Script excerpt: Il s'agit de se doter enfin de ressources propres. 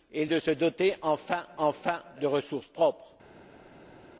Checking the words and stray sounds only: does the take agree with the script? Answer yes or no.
no